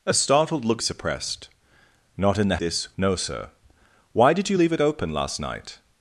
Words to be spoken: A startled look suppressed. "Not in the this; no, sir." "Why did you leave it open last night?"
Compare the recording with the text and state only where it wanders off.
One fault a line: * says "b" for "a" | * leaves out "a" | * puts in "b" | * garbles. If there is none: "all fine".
all fine